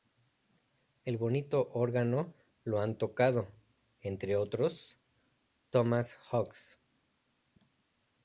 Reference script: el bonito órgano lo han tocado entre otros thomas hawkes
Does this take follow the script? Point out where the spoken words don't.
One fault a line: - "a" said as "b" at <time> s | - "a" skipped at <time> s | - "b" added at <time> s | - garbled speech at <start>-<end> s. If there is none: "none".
none